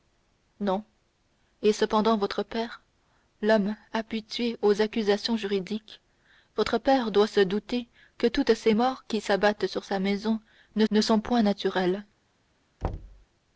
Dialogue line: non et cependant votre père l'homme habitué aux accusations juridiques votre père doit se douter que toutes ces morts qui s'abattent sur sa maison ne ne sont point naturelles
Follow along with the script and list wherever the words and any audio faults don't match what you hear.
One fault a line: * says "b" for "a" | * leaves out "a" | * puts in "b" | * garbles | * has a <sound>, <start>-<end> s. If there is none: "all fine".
* has a thud, 12.8-13.3 s